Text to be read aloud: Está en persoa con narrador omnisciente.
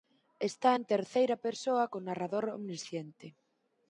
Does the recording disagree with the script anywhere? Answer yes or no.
yes